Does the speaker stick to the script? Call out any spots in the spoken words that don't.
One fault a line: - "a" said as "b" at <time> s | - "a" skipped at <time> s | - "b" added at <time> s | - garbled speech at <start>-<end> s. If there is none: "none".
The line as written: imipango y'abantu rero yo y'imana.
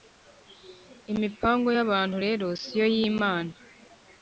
- "si" added at 2.6 s